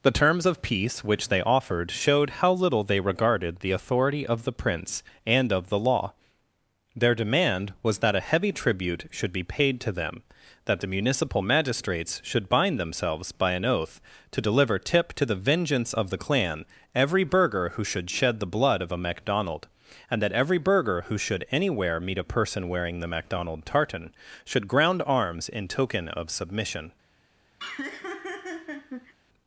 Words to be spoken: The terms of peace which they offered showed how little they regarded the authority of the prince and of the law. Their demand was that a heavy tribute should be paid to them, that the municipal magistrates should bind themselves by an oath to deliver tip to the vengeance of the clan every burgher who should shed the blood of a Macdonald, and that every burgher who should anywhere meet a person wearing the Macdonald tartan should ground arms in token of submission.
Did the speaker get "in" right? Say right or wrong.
right